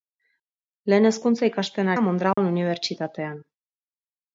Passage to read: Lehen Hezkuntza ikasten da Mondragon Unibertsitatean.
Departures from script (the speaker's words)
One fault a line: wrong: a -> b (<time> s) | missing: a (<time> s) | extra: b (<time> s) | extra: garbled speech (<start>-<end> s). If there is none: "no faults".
no faults